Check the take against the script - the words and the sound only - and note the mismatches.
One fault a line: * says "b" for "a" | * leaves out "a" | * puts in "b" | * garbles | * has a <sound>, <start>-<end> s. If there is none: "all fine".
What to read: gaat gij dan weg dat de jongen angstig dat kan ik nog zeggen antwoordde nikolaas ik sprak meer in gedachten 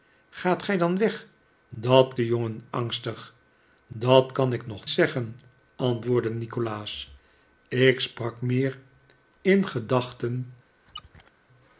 * has a squeak, 10.9-11.3 s